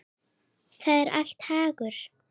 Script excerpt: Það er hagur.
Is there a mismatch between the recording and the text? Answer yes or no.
yes